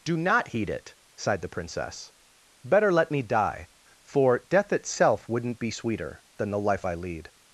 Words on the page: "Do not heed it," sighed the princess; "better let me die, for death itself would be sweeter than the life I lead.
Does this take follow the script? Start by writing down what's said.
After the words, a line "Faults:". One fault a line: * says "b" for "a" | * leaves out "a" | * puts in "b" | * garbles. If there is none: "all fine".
"Do not heed it," sighed the princess; "better let me die, for death itself wouldn't be sweeter than the life I lead.
Faults:
* says "wouldn't" for "would"